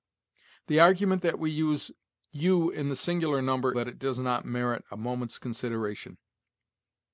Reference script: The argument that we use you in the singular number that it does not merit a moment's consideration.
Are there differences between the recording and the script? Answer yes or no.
no